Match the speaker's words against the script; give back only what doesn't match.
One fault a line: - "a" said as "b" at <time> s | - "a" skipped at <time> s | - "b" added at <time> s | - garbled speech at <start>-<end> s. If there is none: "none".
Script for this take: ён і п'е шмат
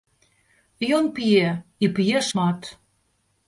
- "п'е" added at 1.2 s